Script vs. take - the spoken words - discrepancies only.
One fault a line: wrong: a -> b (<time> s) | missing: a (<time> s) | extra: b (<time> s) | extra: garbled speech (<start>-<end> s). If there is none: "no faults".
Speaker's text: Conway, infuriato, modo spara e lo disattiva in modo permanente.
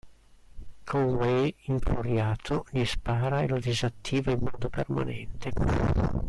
wrong: modo -> gli (2.7 s)